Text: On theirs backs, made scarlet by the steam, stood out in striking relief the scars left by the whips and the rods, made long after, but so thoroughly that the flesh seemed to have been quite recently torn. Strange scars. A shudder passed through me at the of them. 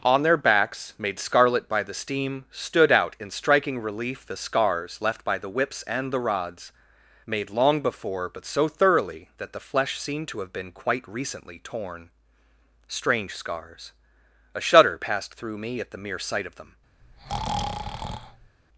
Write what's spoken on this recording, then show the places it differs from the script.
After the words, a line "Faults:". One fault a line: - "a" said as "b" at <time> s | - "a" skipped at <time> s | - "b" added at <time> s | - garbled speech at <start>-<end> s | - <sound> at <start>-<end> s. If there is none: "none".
On their backs, made scarlet by the steam, stood out in striking relief the scars left by the whips and the rods, made long before, but so thoroughly that the flesh seemed to have been quite recently torn. Strange scars. A shudder passed through me at the mere sight of them.
Faults:
- "theirs" said as "their" at 0.2 s
- "after" said as "before" at 7.8 s
- "mere sight" added at 16.0 s
- breath at 17.0-18.6 s